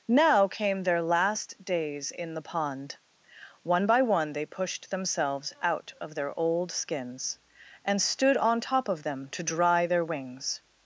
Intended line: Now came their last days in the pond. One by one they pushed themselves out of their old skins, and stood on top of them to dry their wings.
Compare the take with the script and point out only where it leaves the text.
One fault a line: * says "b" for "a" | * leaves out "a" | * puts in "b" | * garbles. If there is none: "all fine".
all fine